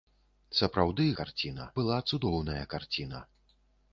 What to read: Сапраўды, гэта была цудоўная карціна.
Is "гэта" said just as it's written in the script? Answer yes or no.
no